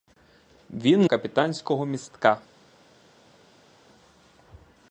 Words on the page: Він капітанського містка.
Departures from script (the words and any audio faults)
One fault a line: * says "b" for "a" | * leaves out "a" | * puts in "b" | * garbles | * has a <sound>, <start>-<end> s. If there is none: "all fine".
all fine